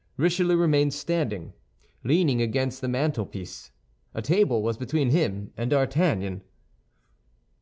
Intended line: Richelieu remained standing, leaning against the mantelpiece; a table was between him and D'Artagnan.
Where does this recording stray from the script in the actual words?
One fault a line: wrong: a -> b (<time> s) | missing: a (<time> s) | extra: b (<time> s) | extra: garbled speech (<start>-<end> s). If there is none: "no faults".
no faults